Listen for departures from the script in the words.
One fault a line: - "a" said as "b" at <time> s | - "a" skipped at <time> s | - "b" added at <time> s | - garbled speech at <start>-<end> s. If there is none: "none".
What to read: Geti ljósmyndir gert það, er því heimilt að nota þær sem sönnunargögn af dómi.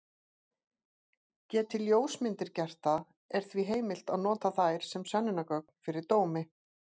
- "af" said as "fyrir" at 5.9 s